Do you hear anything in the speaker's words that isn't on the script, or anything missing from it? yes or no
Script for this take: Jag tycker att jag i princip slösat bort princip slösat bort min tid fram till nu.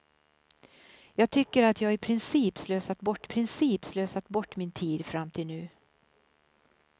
no